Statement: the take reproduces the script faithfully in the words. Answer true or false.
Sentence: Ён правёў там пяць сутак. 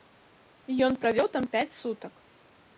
true